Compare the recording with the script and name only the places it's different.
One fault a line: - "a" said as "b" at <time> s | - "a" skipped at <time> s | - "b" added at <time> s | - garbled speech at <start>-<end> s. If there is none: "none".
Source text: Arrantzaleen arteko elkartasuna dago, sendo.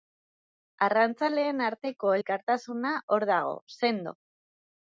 - "hor" added at 3.2 s